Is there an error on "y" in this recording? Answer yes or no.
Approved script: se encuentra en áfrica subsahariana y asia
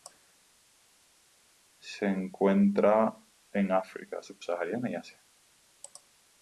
no